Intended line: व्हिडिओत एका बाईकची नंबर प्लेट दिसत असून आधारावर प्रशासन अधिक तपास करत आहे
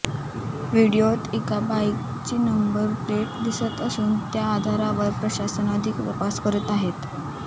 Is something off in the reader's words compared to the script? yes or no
yes